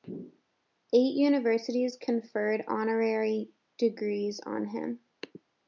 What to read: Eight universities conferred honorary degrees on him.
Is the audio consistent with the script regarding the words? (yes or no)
yes